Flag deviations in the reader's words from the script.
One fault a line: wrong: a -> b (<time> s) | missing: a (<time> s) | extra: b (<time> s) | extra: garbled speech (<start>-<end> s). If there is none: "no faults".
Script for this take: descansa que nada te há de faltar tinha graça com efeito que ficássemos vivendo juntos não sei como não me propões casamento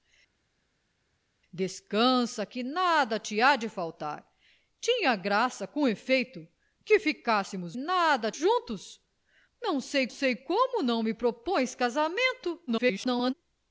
wrong: vivendo -> nada (7.8 s)
extra: sei (10.1 s)
extra: garbled speech (12.7-13.3 s)